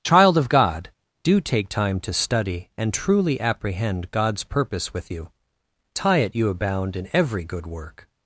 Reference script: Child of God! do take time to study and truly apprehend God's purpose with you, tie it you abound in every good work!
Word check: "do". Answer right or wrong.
right